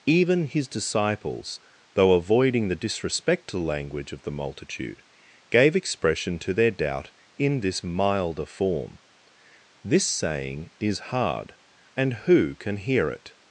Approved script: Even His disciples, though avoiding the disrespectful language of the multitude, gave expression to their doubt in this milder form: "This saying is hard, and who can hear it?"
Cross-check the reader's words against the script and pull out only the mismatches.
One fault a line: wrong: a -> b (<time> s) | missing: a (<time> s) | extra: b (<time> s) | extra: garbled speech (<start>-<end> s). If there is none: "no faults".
no faults